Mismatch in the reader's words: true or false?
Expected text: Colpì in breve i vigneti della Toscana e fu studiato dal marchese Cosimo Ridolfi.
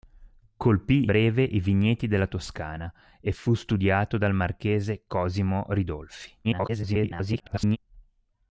true